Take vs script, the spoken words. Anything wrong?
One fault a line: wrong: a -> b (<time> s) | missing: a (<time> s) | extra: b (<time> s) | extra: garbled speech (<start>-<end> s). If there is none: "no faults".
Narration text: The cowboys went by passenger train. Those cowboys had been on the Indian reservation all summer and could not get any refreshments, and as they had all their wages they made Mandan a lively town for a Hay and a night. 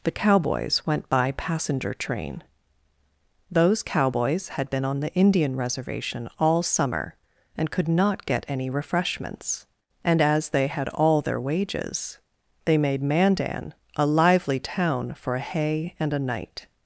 no faults